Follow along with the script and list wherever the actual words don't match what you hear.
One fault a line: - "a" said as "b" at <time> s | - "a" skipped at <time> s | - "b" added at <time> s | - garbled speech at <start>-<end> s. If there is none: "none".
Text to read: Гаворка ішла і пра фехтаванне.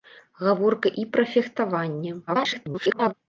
- "ішла" skipped at 0.9 s
- garbled speech at 2.3-3.1 s